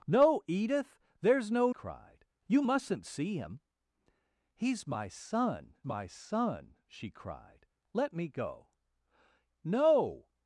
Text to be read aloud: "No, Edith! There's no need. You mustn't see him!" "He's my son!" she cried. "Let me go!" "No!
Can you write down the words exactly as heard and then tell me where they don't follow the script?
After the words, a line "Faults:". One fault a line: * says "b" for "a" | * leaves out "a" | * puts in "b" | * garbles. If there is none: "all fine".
"No, Edith! There's no cried. You mustn't see him!" "He's my son my son!" she cried. "Let me go!" "No!
Faults:
* says "cried" for "need"
* puts in "my son"